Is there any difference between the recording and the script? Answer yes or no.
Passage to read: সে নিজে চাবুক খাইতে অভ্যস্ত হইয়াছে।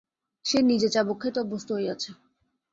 no